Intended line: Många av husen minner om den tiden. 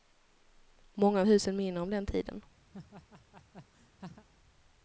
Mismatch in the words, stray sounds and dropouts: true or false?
true